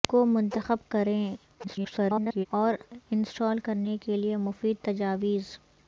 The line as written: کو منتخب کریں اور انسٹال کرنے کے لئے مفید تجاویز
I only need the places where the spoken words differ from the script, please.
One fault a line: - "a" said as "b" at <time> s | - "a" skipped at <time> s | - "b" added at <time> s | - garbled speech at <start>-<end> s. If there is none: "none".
- garbled speech at 1.6-2.5 s